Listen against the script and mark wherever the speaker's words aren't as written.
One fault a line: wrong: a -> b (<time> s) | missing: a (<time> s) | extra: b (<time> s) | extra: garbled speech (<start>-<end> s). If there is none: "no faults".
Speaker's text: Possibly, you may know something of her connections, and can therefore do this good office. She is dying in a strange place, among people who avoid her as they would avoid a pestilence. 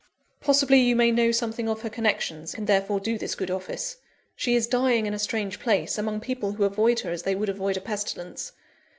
missing: and (2.5 s)